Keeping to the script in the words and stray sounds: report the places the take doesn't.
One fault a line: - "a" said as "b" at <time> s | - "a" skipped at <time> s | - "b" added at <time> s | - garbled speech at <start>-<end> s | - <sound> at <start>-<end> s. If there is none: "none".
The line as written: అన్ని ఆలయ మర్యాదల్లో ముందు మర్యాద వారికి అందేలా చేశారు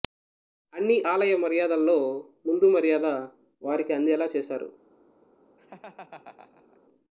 - laugh at 5.6-6.8 s